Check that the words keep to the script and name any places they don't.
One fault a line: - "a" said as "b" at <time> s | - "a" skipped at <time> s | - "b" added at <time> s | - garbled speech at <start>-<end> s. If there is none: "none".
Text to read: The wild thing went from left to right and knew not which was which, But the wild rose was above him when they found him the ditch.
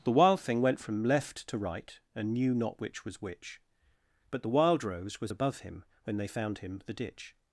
none